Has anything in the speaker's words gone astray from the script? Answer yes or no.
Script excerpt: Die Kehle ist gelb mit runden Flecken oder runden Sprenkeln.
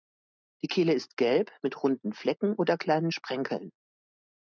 yes